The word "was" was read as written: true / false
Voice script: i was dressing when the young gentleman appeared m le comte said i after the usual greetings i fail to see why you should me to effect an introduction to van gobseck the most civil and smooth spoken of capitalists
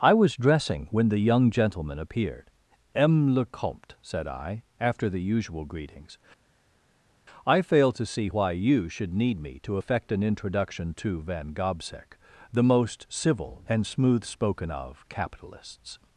true